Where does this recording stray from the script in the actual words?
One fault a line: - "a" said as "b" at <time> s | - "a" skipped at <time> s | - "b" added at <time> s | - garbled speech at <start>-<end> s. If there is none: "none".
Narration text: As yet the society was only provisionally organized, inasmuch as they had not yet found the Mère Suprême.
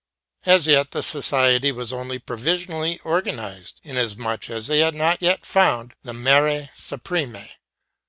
none